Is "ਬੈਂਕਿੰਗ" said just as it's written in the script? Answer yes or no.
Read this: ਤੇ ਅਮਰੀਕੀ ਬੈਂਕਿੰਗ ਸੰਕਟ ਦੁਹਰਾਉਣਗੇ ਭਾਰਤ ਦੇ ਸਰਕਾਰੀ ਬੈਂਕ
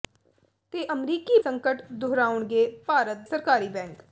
no